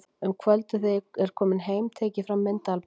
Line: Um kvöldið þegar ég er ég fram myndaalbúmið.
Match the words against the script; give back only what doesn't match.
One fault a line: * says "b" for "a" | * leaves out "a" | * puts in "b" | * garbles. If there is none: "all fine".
* puts in "kominn heim tek"